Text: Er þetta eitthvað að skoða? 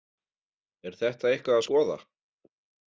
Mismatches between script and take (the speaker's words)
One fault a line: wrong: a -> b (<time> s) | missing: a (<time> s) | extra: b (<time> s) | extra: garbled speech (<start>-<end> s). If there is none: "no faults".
no faults